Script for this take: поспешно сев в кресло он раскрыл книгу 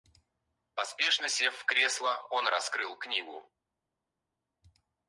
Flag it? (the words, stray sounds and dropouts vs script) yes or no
no